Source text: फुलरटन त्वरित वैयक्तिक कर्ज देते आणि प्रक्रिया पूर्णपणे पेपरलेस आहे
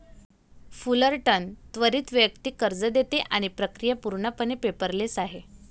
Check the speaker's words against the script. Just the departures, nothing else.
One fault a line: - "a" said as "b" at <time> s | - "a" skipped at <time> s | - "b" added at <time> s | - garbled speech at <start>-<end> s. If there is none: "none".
none